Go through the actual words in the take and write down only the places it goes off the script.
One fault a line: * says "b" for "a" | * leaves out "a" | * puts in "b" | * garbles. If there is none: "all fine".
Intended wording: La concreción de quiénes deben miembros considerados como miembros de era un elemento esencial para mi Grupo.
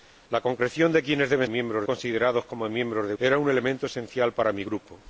all fine